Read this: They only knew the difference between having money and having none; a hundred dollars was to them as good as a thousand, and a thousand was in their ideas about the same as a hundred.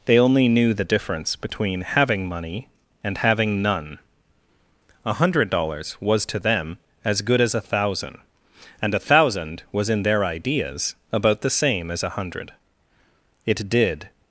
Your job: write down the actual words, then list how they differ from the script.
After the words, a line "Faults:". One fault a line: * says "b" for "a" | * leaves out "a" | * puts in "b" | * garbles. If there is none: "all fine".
They only knew the difference between having money and having none; a hundred dollars was to them as good as a thousand, and a thousand was in their ideas about the same as a hundred. It did
Faults:
* puts in "It did"